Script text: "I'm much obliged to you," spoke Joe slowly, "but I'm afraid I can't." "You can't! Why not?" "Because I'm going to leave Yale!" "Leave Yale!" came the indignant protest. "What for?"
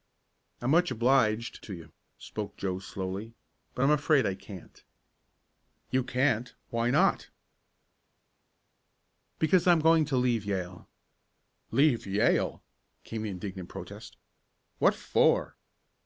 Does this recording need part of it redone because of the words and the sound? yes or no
no